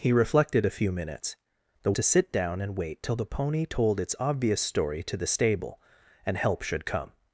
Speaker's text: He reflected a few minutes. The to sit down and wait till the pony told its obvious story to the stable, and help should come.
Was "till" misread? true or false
false